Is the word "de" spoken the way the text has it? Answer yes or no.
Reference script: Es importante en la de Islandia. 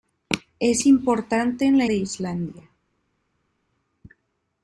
yes